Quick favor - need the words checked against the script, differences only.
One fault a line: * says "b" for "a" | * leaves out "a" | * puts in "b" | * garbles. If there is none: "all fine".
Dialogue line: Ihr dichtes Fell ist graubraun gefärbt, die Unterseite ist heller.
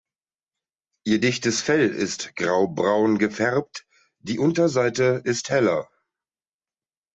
all fine